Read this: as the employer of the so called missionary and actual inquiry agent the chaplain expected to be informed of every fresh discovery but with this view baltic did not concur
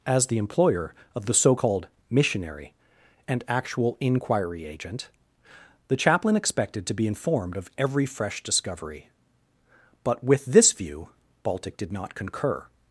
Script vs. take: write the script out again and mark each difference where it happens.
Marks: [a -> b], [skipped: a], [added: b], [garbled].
as the employer of the so called missionary and actual inquiry agent the chaplain expected to be informed of every fresh discovery but with this view baltic did not concur